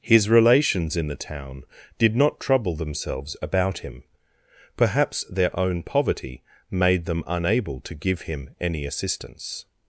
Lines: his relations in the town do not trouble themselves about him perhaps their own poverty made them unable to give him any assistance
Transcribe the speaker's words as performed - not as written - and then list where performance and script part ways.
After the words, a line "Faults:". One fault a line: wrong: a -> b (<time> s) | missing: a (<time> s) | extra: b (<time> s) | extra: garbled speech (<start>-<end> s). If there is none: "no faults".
his relations in the town did not trouble themselves about him perhaps their own poverty made them unable to give him any assistance
Faults:
wrong: do -> did (2.0 s)